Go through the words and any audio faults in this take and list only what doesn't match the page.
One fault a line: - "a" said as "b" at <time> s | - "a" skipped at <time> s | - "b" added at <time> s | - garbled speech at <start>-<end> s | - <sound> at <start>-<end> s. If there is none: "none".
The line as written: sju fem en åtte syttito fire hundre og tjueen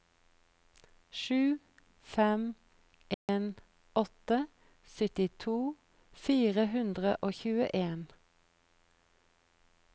- dropout at 3.1-3.3 s